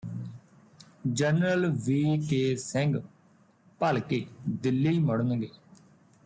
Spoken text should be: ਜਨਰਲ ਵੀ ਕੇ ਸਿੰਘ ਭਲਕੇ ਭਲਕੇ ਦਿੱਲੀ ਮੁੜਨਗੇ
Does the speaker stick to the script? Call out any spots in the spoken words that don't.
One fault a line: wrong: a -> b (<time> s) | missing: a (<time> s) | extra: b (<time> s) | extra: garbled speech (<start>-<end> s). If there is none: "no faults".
missing: ਭਲਕੇ (4.2 s)